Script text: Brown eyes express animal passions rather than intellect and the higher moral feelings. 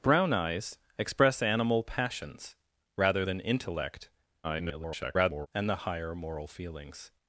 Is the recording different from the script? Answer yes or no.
yes